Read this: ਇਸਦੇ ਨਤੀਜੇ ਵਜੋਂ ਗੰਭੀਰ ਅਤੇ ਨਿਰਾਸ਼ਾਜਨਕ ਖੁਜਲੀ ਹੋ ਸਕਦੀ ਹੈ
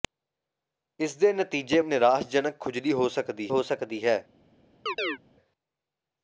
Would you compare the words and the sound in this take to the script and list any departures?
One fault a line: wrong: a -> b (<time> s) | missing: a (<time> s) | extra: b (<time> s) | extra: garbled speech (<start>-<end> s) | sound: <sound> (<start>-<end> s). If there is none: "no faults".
wrong: ਵਜੋਂ ਗੰਭੀਰ ਅਤੇ ਨਿਰਾਸ਼ਾਜਨਕ ਖੁਜਲੀ -> ਨਿਰਾਸ਼ਾਜਨਕ ਖੁਜਲੀ ਹੋ ਸਕਦੀ (1.8 s)
sound: chirp (4.9-5.2 s)